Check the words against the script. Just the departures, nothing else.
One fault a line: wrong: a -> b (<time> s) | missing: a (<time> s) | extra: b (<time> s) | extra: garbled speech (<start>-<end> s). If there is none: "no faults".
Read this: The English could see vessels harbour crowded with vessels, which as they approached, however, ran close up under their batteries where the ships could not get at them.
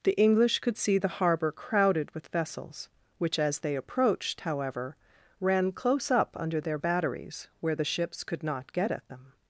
wrong: vessels -> the (1.0 s)